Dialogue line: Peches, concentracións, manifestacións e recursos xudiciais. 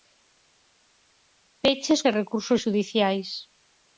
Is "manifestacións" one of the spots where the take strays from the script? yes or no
yes